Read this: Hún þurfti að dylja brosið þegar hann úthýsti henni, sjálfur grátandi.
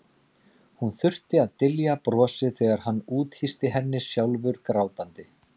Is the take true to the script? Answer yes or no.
yes